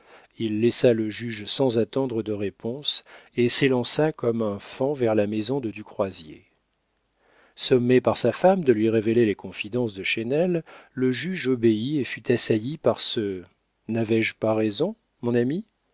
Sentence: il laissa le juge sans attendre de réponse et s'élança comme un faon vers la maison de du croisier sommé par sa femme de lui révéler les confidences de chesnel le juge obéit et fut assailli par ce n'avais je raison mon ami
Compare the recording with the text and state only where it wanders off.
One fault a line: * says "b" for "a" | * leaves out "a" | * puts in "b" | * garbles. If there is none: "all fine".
* puts in "pas"